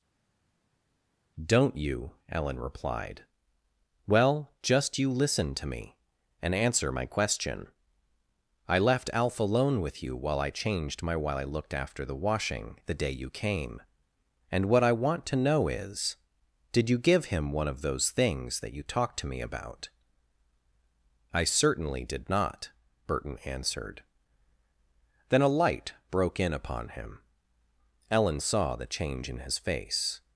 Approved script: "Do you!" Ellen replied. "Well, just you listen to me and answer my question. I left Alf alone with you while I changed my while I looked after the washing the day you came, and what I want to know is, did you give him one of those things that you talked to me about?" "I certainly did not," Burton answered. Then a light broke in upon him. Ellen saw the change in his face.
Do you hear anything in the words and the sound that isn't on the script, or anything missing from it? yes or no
yes